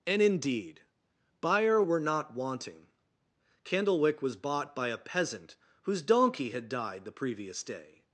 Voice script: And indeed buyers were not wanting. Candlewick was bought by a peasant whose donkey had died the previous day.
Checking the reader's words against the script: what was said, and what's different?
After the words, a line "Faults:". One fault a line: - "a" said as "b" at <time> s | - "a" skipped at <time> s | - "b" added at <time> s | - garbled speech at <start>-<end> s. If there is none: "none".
And indeed buyer were not wanting. Candlewick was bought by a peasant whose donkey had died the previous day.
Faults:
- "buyers" said as "buyer" at 1.4 s